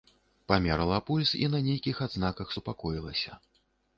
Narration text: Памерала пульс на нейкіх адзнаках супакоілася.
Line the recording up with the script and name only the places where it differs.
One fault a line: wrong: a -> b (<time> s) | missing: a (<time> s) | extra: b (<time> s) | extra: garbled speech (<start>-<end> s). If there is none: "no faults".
extra: і (1.4 s)